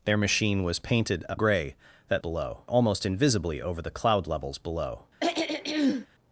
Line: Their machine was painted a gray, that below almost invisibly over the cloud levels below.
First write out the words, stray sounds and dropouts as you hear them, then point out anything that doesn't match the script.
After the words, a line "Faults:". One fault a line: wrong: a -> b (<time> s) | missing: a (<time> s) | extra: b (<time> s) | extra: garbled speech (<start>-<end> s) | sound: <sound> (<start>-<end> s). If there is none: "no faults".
Their machine was painted a gray, that below almost invisibly over the cloud levels below.
Faults:
sound: throat clearing (5.2-6.1 s)